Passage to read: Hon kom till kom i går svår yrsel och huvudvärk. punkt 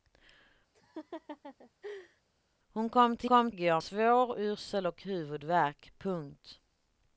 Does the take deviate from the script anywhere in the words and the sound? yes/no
yes